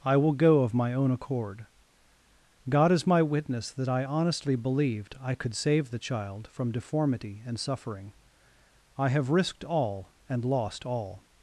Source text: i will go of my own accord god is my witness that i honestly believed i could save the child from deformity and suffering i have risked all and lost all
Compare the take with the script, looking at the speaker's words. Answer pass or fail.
pass